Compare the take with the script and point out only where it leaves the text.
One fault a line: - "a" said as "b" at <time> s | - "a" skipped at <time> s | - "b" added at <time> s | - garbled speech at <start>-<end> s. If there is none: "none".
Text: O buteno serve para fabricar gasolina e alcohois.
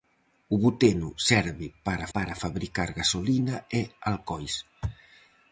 - "para" added at 2.1 s